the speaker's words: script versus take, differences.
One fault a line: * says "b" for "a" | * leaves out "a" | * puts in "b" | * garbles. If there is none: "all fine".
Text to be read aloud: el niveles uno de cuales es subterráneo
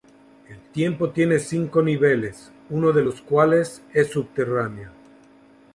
* puts in "templo tiene cinco"
* puts in "los"